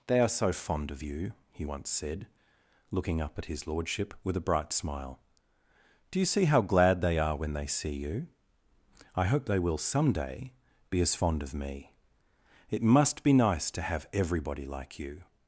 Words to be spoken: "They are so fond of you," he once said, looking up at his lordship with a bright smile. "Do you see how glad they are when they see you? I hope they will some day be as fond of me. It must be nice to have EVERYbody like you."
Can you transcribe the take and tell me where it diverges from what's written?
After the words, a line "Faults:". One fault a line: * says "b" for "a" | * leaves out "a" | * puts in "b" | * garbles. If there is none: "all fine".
"They are so fond of you," he once said, looking up at his lordship with a bright smile. "Do you see how glad they are when they see you? I hope they will some day be as fond of me. It must be nice to have EVERYbody like you."
Faults:
all fine